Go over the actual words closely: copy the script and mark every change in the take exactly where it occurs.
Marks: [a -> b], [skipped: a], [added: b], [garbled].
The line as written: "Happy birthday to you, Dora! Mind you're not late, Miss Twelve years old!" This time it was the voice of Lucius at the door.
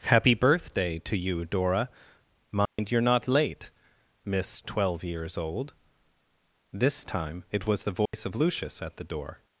"Happy birthday to you, Dora! Mind you're not late, Miss Twelve years old!" This time it was the voice of Lucius at the door.